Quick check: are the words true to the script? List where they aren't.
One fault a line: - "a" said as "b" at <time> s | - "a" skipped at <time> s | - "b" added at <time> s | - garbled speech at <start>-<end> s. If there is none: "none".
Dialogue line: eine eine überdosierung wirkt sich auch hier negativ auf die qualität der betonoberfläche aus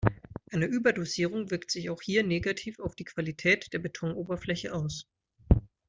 - "eine" skipped at 0.7 s